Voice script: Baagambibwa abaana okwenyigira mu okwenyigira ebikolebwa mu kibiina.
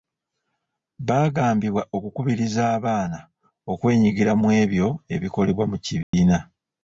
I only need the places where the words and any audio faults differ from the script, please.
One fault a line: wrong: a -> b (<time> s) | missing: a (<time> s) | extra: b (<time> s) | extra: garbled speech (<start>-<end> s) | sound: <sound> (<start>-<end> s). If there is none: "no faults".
extra: okukubiriza (1.9 s)
wrong: okwenyigira -> ebyo (4.6 s)
sound: dropout (6.0-6.1 s)